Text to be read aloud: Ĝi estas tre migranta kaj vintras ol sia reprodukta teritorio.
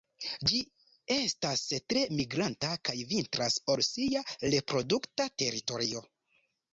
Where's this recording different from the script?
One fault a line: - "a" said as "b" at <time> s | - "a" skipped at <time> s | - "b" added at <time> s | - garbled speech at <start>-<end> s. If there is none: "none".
none